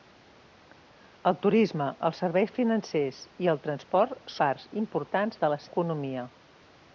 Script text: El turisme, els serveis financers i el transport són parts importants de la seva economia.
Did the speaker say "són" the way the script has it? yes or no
no